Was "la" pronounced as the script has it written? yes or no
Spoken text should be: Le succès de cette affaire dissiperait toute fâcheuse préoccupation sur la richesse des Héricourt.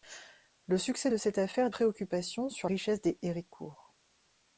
no